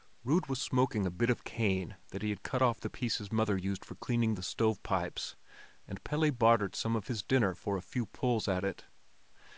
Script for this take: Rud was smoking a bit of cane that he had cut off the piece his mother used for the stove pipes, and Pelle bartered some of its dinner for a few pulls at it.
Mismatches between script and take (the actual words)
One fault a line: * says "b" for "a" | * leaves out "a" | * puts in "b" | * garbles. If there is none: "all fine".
* puts in "cleaning"
* says "his" for "its"